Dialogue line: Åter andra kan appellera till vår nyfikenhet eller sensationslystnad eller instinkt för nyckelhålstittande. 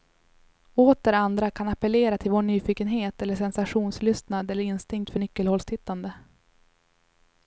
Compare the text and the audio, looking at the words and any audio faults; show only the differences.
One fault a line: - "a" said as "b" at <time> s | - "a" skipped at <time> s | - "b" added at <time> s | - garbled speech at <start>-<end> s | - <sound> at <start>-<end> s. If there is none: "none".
none